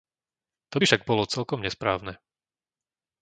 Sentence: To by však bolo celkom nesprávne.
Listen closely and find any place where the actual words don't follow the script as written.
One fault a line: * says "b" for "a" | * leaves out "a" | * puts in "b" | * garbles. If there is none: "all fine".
all fine